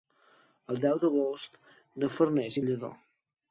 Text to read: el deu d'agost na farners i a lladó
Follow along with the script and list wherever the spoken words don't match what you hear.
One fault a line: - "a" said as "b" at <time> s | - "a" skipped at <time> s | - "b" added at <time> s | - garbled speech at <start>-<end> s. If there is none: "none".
none